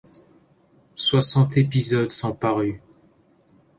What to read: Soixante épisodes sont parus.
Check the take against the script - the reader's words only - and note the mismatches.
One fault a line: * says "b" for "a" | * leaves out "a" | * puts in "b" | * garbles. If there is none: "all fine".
all fine